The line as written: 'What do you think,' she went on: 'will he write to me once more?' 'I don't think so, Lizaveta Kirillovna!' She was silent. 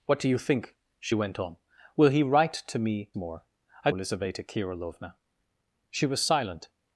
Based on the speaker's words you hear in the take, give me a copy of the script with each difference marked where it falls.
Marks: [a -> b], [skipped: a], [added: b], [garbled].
'What do you think,' she went on: 'will he write to me [skipped: once] more?' 'I [skipped: don't think so,] Lizaveta Kirillovna!' She was silent.